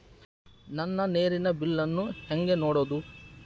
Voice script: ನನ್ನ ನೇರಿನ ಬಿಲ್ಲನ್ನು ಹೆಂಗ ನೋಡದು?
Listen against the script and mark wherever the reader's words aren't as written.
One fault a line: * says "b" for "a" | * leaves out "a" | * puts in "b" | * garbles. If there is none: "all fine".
all fine